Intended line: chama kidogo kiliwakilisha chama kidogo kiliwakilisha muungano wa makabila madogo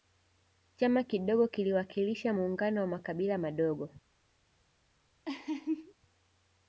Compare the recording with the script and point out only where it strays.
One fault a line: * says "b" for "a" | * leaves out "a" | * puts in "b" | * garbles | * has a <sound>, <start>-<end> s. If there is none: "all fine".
* leaves out "chama kidogo kiliwakilisha"
* has a laugh, 5.2-5.9 s